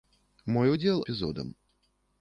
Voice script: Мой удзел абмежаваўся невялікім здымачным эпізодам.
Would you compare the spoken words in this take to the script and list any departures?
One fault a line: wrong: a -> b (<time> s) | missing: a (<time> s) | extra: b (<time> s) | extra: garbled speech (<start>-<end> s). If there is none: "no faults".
missing: абмежаваўся невялікім здымачным (1.0 s)